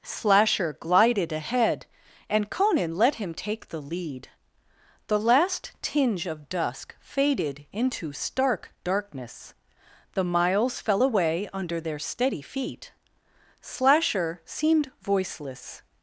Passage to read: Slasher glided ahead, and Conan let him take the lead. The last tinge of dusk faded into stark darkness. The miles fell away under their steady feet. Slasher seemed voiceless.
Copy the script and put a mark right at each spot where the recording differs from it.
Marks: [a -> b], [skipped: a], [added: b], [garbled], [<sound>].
Slasher glided ahead, and Conan let him take the lead. The last tinge of dusk faded into stark darkness. The miles fell away under their steady feet. Slasher seemed voiceless.